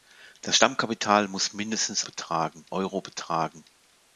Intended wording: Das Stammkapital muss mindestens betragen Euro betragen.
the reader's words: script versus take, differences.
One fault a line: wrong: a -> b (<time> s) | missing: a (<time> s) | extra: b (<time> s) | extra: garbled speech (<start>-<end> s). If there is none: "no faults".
no faults